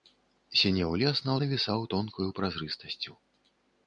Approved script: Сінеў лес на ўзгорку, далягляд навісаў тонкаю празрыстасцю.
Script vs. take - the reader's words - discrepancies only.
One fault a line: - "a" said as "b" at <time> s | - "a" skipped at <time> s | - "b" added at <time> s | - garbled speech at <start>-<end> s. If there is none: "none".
- "ўзгорку далягляд" skipped at 1.3 s